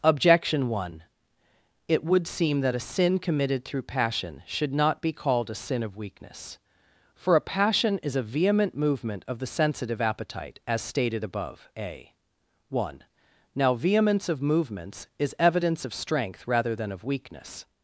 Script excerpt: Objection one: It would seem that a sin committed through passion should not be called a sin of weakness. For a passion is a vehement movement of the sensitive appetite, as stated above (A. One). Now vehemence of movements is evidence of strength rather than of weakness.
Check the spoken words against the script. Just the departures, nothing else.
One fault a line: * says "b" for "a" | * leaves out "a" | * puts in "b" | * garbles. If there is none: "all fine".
all fine